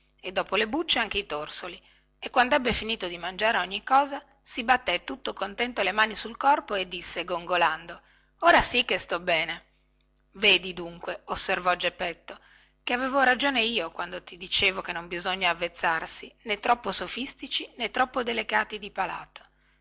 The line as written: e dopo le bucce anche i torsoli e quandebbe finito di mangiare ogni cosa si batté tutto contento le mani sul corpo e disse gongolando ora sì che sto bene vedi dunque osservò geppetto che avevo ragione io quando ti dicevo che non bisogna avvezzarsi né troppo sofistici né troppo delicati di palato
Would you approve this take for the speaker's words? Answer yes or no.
yes